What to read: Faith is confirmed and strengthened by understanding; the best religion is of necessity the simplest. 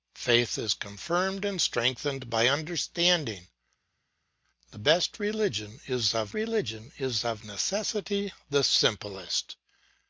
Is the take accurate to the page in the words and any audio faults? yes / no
no